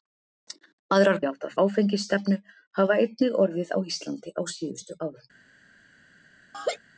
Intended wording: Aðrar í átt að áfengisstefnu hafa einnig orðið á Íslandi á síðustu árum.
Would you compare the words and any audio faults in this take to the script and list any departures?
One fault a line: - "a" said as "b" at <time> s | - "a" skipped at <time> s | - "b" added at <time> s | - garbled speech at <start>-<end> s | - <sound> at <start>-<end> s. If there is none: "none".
- laugh at 6.5-6.8 s